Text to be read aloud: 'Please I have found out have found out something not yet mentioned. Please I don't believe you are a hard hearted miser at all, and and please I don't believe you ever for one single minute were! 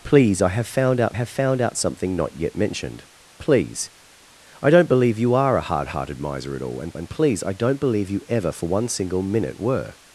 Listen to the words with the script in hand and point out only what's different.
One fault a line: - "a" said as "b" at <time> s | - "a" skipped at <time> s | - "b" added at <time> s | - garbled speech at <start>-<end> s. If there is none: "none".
none